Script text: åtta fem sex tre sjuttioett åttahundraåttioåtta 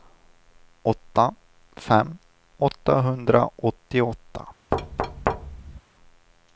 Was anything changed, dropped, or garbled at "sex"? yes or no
yes